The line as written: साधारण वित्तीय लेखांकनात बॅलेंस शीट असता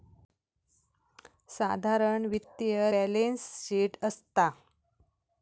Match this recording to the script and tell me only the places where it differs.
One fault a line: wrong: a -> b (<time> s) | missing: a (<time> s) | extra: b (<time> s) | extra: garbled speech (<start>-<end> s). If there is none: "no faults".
missing: लेखांकनात (2.9 s)